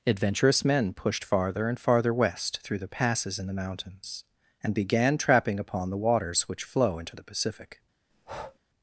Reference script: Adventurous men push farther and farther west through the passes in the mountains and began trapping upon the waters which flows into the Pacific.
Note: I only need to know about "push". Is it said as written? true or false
false